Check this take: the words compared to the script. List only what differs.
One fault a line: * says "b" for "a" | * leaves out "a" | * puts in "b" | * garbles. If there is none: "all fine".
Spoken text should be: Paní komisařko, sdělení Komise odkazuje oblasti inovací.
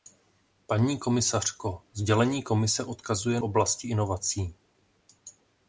all fine